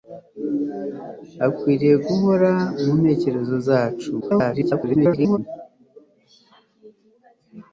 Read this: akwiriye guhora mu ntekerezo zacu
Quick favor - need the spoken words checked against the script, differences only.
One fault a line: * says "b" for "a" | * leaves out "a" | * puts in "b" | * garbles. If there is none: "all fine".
* garbles